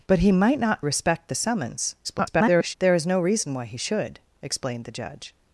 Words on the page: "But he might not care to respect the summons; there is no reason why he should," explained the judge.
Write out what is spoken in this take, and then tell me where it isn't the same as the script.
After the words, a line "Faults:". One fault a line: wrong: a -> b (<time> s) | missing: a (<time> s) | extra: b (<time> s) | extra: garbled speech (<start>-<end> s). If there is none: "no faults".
"But he might not respect the summons; [garbled] there is no reason why he should," explained the judge.
Faults:
missing: care to (0.8 s)
extra: garbled speech (2.0-2.8 s)